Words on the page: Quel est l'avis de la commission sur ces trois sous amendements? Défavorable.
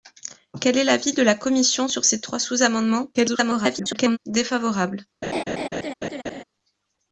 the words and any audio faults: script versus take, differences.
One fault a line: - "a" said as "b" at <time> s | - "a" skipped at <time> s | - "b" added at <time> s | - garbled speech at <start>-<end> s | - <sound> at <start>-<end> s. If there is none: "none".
- garbled speech at 3.1-4.2 s
- laugh at 5.2-6.4 s